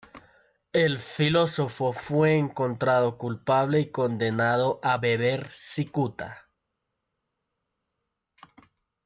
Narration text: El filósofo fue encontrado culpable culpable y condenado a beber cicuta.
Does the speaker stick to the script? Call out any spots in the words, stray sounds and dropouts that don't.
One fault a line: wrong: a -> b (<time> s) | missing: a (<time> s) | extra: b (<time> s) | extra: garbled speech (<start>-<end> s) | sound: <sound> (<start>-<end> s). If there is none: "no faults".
missing: culpable (3.8 s)